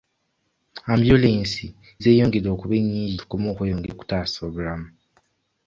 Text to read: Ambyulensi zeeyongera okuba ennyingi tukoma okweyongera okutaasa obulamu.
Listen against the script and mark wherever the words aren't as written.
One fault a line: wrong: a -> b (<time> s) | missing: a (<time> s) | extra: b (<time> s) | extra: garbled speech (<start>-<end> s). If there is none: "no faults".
no faults